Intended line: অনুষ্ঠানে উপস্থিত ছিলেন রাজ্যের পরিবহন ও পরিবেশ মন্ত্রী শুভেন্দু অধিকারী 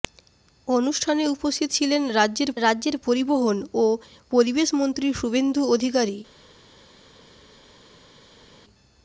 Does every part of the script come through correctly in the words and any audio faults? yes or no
no